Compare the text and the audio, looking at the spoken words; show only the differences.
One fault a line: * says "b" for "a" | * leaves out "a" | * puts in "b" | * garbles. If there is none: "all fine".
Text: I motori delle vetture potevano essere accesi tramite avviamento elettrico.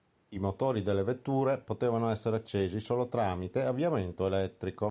* puts in "solo"